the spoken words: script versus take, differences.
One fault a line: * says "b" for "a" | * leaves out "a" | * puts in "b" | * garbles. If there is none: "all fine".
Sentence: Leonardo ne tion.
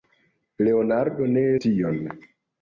all fine